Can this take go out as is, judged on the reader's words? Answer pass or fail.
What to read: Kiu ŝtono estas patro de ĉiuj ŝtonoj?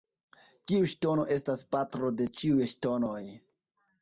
pass